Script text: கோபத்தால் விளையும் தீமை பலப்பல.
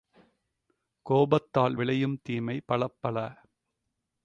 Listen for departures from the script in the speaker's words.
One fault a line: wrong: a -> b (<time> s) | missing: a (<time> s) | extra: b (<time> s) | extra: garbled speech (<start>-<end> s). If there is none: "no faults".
no faults